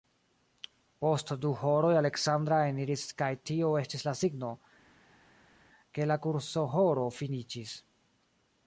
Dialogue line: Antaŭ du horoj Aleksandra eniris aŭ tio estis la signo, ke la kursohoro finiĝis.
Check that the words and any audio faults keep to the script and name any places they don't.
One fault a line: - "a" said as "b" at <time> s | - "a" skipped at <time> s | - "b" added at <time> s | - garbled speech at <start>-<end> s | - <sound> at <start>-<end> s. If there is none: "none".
- "Antaŭ" said as "Post" at 1.0 s
- "aŭ" said as "kaj" at 3.2 s